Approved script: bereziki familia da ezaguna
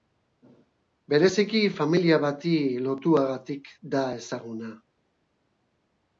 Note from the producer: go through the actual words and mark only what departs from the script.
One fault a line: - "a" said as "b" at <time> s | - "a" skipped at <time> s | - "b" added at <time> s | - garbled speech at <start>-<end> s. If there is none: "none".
- "bati lotuagatik" added at 2.2 s